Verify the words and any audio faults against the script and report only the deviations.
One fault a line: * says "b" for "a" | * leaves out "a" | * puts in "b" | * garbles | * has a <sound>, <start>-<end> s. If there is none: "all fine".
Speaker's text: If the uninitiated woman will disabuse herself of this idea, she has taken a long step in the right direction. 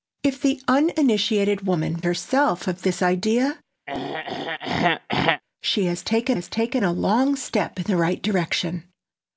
* leaves out "will disabuse"
* has a throat clearing, 3.9-5.4 s
* puts in "has taken"